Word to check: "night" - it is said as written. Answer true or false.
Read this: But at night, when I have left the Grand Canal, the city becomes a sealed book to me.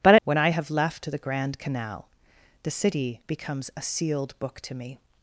false